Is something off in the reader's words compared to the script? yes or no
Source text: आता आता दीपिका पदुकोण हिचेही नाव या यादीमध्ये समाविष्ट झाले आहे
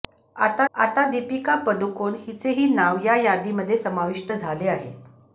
no